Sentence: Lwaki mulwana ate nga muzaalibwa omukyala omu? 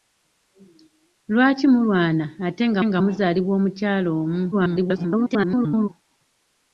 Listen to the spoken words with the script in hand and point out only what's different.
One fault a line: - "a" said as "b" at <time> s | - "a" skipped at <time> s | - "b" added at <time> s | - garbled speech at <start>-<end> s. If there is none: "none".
- "nga" added at 2.9 s
- garbled speech at 4.5-5.9 s